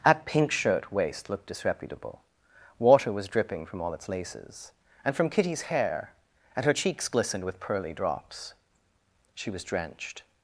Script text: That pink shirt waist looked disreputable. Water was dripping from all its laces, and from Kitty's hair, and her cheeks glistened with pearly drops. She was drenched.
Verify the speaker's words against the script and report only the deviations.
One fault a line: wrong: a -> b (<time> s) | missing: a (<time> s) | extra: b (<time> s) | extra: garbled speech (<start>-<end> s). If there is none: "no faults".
no faults